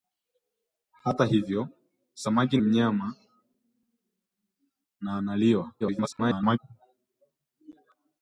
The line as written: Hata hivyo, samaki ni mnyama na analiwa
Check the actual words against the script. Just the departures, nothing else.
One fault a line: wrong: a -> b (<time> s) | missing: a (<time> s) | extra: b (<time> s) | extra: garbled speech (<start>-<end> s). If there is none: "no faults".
missing: ni (2.6 s)
extra: garbled speech (5.8-6.6 s)